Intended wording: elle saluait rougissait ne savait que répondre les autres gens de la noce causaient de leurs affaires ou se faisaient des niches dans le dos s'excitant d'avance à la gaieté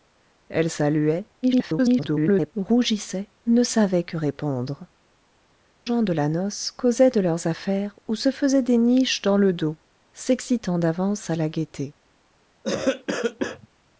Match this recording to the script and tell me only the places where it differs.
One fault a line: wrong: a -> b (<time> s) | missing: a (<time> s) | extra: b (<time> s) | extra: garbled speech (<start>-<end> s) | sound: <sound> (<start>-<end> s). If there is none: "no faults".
extra: garbled speech (1.4-2.5 s)
missing: les autres (4.9 s)
sound: cough (12.6-13.7 s)